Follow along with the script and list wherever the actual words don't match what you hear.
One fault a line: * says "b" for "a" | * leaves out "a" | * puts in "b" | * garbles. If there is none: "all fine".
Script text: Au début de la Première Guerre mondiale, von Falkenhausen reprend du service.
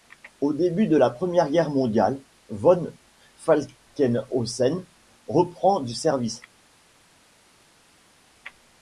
all fine